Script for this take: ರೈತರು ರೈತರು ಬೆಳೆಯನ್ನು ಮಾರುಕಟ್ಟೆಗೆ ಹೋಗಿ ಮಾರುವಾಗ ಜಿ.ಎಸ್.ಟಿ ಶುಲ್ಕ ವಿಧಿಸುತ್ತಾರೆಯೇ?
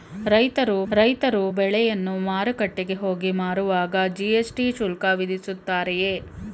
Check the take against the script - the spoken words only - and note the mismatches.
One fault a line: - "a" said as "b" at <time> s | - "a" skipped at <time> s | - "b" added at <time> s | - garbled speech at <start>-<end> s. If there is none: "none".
none